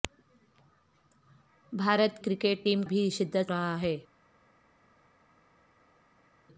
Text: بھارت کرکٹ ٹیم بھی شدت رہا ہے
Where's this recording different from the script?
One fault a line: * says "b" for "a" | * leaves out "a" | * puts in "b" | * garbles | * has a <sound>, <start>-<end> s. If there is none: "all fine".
all fine